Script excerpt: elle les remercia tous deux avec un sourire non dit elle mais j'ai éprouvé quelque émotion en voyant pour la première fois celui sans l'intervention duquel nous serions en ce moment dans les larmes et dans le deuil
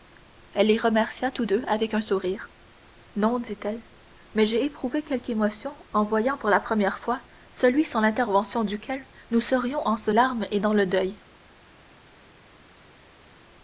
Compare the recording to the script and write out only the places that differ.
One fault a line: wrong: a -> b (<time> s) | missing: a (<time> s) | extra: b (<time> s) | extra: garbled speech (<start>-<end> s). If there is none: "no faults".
missing: moment dans les (10.1 s)